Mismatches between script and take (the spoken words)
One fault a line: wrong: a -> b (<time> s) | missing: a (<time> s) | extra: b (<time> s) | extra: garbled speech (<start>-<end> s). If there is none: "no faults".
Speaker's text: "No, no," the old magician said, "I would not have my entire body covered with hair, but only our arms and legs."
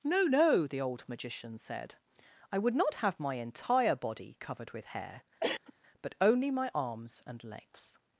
wrong: our -> my (6.5 s)